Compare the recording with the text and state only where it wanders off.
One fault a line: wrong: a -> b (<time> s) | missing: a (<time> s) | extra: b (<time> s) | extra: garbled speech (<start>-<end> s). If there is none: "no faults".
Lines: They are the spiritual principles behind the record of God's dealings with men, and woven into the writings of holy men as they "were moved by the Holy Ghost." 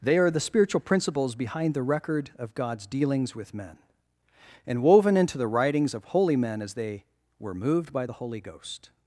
no faults